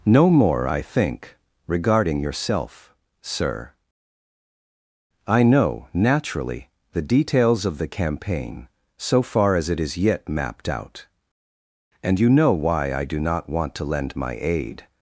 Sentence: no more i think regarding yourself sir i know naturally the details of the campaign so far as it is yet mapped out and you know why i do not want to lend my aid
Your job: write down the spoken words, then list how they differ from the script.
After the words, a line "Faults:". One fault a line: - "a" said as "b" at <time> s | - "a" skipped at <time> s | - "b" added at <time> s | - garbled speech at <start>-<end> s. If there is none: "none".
no more i think regarding yourself sir i know naturally the details of the campaign so far as it is yet mapped out and you know why i do not want to lend my aid
Faults:
none